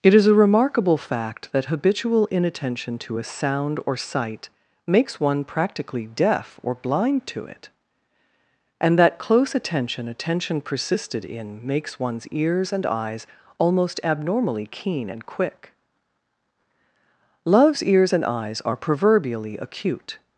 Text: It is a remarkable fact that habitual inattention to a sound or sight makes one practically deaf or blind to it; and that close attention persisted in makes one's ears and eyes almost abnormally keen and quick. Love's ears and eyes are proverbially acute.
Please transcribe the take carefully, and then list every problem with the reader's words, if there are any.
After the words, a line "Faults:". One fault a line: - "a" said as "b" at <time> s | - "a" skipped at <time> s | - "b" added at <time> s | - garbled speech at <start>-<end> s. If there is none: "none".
It is a remarkable fact that habitual inattention to a sound or sight makes one practically deaf or blind to it; and that close attention attention persisted in makes one's ears and eyes almost abnormally keen and quick. Love's ears and eyes are proverbially acute.
Faults:
- "attention" added at 10.1 s